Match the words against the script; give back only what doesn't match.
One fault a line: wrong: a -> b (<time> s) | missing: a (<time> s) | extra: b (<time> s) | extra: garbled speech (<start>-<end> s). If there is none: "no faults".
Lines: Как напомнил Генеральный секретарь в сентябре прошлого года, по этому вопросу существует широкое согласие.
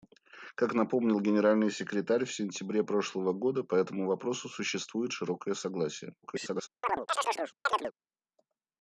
extra: garbled speech (6.2-6.7 s)